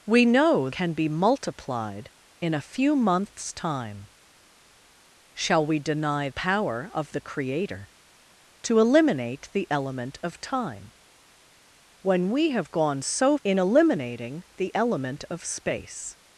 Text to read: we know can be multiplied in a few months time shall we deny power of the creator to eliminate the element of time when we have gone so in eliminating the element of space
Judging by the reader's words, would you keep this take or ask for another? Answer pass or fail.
pass